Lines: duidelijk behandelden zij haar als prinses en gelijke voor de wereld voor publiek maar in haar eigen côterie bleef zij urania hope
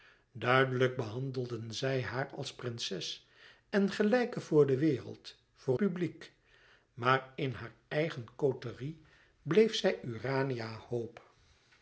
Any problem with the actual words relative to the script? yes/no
no